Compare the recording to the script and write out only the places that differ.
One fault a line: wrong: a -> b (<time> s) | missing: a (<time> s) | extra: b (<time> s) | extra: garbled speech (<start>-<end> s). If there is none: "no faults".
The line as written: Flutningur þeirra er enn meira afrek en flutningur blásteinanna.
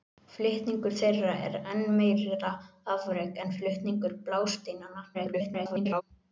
extra: garbled speech (5.1-6.0 s)